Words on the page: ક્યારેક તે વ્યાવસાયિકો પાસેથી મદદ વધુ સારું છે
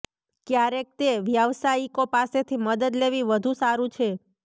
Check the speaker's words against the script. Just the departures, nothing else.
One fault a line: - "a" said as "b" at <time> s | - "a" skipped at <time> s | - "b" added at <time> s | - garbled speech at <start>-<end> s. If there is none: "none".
- "લેવી" added at 3.0 s